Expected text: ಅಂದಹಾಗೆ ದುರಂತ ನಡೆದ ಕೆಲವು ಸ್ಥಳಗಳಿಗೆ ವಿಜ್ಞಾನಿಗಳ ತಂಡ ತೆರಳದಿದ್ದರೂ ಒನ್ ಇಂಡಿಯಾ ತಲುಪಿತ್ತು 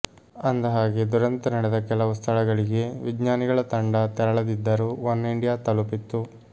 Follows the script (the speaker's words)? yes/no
yes